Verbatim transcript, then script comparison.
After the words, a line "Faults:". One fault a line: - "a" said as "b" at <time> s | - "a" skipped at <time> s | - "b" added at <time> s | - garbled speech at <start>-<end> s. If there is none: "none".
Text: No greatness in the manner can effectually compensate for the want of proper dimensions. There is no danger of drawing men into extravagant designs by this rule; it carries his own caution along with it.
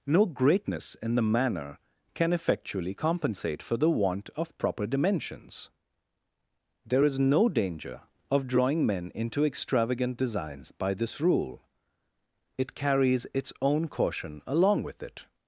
No greatness in the manner can effectually compensate for the want of proper dimensions. There is no danger of drawing men into extravagant designs by this rule; it carries its own caution along with it.
Faults:
- "his" said as "its" at 13.3 s